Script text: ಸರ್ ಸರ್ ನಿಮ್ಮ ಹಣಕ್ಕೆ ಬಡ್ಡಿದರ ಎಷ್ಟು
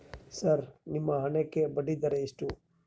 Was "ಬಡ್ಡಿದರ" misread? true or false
false